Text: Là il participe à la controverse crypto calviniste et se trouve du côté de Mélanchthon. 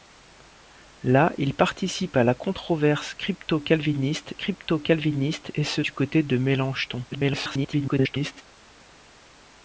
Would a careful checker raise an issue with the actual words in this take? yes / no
yes